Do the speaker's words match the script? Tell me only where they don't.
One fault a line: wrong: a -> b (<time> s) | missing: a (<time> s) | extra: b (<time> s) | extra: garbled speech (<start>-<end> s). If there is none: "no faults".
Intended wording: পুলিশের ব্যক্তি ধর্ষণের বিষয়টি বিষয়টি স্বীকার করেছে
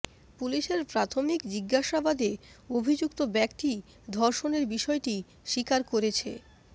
extra: প্রাথমিক জিজ্ঞাসাবাদে অভিযুক্ত (0.9 s)
missing: বিষয়টি (5.2 s)